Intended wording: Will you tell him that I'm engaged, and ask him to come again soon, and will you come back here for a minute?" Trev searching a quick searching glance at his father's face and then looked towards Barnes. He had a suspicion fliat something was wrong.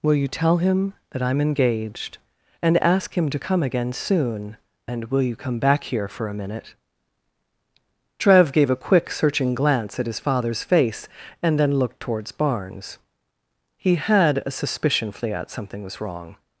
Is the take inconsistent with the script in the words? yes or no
yes